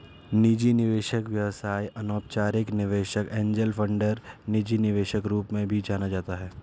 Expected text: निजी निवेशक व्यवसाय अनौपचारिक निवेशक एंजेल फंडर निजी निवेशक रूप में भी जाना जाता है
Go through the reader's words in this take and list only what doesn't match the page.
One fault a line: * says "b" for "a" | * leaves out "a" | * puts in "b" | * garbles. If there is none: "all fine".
all fine